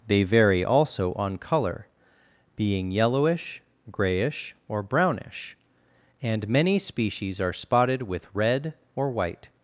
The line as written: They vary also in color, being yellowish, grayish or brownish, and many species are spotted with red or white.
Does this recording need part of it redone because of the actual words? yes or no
yes